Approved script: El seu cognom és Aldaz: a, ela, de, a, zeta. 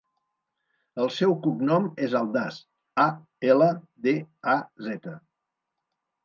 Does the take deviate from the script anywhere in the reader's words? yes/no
no